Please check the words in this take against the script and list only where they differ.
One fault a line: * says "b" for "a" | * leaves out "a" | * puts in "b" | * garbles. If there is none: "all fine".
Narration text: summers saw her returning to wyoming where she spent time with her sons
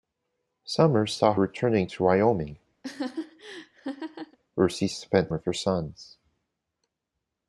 * leaves out "her"
* leaves out "time"